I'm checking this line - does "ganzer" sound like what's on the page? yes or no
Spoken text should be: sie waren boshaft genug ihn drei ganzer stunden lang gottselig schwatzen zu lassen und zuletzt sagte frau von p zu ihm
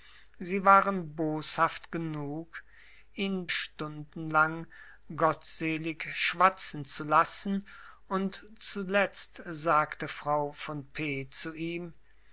no